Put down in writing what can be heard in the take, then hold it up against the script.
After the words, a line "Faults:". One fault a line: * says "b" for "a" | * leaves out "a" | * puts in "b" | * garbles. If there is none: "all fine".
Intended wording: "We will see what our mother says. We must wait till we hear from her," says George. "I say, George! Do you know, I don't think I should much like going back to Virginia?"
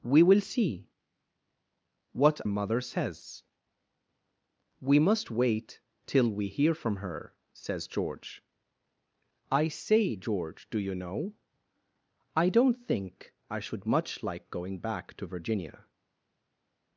"We will see what mother says. We must wait till we hear from her," says George. "I say, George! Do you know, I don't think I should much like going back to Virginia?"
Faults:
* leaves out "our"